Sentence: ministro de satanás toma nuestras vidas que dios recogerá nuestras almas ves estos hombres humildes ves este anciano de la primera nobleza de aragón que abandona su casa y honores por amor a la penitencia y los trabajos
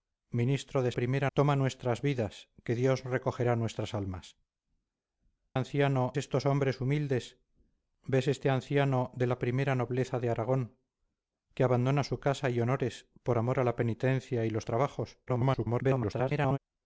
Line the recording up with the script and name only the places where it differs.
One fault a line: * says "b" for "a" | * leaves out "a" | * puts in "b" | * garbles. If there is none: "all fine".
* says "primera" for "satanás"
* says "anciano" for "ves"
* garbles